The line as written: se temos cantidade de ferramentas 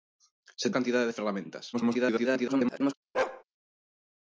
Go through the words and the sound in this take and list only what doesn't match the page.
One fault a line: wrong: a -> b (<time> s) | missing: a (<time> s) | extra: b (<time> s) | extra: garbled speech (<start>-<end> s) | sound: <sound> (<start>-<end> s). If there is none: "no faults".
missing: temos (0.7 s)
extra: garbled speech (1.7-2.9 s)
sound: bark (3.1-3.4 s)